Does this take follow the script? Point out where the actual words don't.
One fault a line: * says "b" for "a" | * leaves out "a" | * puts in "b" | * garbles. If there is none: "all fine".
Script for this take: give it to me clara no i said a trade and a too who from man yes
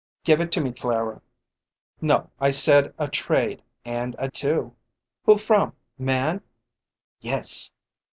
all fine